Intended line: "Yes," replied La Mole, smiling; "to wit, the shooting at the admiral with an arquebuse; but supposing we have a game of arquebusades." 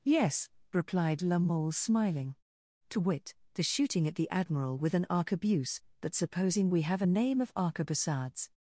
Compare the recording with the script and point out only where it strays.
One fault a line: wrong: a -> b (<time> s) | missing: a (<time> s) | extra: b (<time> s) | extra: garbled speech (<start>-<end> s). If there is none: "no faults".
wrong: game -> name (7.0 s)